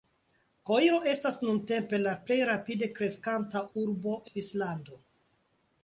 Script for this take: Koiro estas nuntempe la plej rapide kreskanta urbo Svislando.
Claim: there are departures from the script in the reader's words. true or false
false